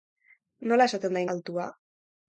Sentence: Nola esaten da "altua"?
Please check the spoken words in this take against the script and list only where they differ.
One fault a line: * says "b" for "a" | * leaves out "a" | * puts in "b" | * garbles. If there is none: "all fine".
all fine